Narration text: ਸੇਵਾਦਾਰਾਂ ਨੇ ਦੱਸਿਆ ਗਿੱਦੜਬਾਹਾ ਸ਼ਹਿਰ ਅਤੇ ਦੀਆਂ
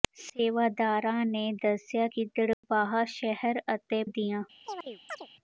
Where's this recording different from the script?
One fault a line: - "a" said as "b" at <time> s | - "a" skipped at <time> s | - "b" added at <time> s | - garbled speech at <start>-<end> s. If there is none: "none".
none